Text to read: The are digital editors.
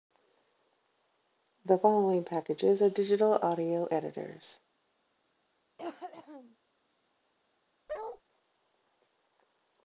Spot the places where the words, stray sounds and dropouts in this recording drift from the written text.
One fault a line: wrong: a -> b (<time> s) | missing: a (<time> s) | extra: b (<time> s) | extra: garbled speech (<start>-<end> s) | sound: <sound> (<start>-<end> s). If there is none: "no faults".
extra: following packages (1.8 s)
extra: audio (3.4 s)
sound: cough (5.8-6.6 s)
sound: bark (7.9-8.2 s)